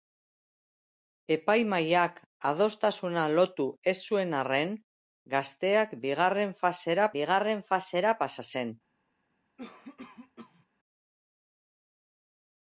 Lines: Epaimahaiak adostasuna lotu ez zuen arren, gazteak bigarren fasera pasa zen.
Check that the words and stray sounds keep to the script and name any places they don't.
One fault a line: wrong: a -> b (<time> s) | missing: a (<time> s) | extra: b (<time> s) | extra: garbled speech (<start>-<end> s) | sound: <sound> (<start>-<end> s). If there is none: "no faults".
extra: bigarren fasera (7.2 s)
sound: cough (9.6-10.7 s)